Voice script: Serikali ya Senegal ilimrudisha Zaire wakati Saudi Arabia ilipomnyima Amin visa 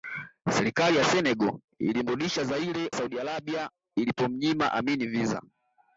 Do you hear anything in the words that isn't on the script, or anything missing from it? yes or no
yes